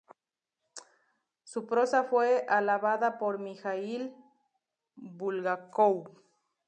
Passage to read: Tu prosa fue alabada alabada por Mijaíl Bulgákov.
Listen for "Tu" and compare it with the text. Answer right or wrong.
wrong